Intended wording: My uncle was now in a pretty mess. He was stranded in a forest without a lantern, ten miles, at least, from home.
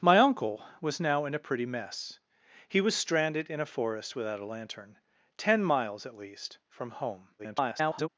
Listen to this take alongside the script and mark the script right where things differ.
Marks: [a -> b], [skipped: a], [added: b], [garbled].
My uncle was now in a pretty mess. He was stranded in a forest without a lantern, ten miles, at least, from home. [garbled]